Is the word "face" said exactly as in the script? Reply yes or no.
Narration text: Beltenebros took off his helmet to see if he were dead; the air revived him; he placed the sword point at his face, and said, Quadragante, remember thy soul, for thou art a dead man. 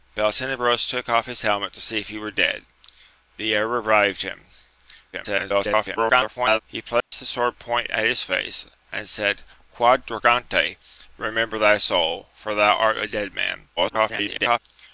yes